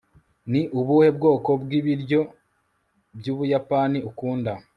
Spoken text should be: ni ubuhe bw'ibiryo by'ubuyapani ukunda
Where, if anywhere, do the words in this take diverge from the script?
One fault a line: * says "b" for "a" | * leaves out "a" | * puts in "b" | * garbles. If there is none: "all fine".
* puts in "bwoko"